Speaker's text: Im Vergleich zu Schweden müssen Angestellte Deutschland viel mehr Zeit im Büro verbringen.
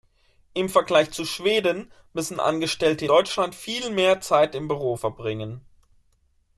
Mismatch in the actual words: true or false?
false